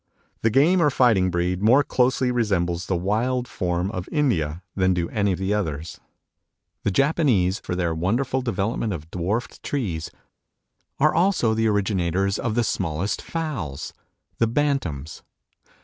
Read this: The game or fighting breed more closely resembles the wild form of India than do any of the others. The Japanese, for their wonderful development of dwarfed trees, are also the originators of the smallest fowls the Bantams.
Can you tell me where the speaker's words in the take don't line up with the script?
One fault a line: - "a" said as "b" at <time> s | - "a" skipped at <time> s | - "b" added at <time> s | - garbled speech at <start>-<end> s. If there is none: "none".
none